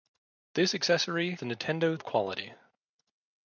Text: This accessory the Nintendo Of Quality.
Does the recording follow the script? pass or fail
pass